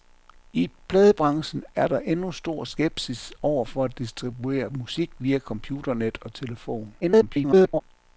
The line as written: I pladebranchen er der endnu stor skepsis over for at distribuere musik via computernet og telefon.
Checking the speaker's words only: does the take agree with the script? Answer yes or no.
no